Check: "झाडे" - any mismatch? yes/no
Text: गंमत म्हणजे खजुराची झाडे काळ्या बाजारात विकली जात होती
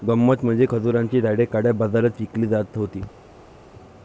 no